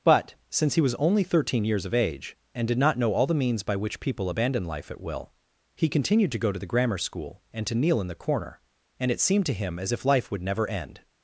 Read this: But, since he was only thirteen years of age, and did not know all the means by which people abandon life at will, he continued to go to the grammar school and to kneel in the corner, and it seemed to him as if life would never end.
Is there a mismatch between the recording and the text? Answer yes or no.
no